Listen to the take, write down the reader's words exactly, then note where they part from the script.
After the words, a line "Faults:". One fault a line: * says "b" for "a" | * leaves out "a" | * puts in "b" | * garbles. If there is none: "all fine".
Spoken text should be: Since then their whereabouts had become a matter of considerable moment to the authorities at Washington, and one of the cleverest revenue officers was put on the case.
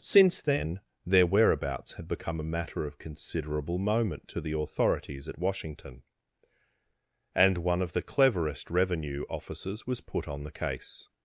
Since then their whereabouts had become a matter of considerable moment to the authorities at Washington, and one of the cleverest revenue officers was put on the case.
Faults:
all fine